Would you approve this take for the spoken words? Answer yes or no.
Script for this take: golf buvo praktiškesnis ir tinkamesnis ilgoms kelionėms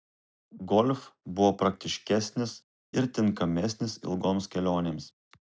yes